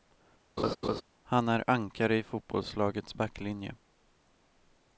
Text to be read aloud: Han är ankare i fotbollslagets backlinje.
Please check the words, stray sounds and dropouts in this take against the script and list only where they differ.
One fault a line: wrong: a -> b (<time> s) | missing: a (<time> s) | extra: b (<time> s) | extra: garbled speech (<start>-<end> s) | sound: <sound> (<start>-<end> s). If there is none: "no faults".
sound: laugh (0.6-1.0 s)